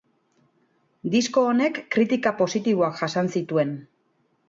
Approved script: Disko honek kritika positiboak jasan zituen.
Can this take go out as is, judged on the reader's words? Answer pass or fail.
pass